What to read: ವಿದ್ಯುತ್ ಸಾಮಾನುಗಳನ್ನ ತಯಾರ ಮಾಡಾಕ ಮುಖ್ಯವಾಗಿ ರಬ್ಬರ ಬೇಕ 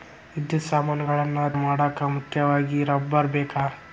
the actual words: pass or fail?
fail